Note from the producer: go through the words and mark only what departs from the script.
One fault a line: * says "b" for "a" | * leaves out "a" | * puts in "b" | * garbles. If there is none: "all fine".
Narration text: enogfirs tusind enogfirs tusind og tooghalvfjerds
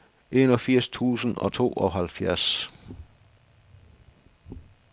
* leaves out "enogfirs tusind"